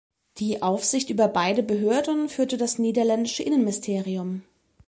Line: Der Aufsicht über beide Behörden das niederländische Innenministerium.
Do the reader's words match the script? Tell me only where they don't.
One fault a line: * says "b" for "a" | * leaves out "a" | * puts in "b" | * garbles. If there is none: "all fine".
* says "Die" for "Der"
* puts in "führte"